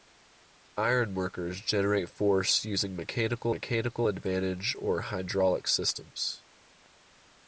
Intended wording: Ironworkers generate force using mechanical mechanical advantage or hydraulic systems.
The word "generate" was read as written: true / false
true